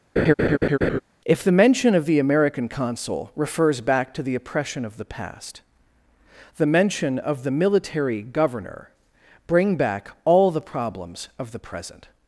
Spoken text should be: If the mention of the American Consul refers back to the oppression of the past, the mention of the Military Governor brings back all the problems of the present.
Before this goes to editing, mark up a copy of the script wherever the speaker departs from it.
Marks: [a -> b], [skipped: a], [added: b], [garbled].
If the mention of the American Consul refers back to the oppression of the past, the mention of the Military Governor [brings -> bring] back all the problems of the present.